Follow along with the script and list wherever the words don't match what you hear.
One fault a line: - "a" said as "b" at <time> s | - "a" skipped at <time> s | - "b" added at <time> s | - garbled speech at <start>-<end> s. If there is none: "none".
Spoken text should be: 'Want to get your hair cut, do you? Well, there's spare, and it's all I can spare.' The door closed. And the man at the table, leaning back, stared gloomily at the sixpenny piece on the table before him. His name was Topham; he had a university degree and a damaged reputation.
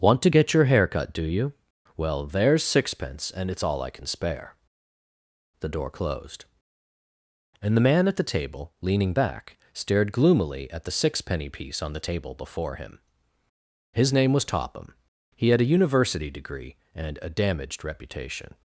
- "spare" said as "sixpence" at 2.6 s